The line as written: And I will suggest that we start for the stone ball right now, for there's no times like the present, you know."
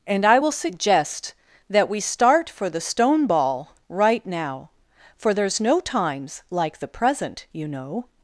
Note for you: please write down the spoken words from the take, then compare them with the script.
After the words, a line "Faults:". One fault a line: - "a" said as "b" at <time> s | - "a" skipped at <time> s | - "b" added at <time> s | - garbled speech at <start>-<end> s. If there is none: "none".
And I will suggest that we start for the stone ball right now, for there's no times like the present, you know."
Faults:
none